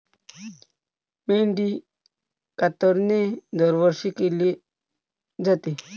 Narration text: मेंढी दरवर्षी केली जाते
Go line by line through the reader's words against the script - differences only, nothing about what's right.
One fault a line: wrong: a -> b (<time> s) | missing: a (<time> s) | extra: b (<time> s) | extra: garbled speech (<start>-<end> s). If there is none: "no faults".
extra: कातरणे (2.6 s)